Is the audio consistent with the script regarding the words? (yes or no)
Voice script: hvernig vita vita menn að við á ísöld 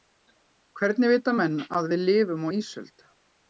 no